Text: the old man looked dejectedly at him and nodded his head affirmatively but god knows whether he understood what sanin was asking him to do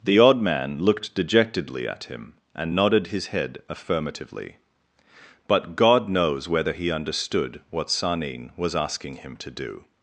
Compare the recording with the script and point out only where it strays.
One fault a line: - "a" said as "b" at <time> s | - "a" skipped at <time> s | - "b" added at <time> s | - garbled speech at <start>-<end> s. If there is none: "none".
- "old" said as "odd" at 0.2 s